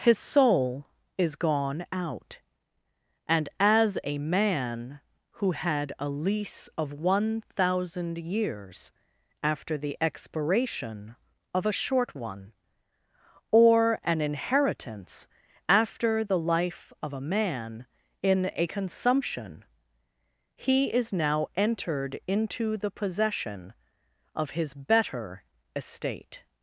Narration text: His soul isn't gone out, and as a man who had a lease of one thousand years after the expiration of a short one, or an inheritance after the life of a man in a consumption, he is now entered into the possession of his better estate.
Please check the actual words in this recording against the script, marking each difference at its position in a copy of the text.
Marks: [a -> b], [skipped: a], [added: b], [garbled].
His soul [isn't -> is] gone out, and as a man who had a lease of one thousand years after the expiration of a short one, or an inheritance after the life of a man in a consumption, he is now entered into the possession of his better estate.